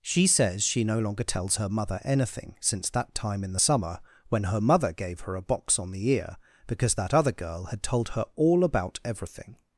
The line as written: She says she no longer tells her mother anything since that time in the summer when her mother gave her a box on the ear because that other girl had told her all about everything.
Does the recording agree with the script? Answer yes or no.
yes